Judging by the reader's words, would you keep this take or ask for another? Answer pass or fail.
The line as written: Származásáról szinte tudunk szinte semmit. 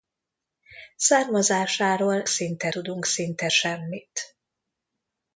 pass